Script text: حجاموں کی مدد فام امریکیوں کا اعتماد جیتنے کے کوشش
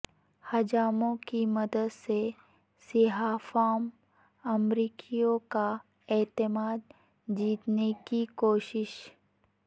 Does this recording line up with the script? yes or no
no